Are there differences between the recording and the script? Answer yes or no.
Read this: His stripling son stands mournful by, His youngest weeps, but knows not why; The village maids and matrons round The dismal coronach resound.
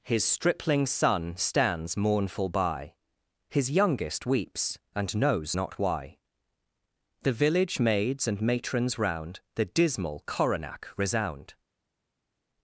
yes